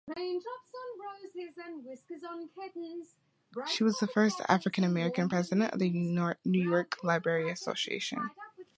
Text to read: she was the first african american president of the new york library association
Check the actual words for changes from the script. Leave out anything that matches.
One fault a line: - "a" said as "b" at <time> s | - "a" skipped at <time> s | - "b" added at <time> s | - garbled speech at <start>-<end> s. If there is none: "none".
none